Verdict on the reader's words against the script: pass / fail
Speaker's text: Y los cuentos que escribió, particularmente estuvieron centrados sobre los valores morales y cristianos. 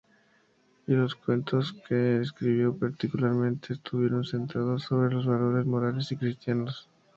pass